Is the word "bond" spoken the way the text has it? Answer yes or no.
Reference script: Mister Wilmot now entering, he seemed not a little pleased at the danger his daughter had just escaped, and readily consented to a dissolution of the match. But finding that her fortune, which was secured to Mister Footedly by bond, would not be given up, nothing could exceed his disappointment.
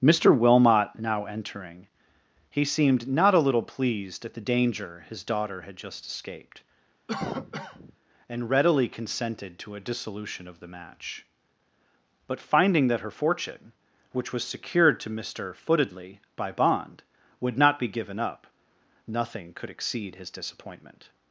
yes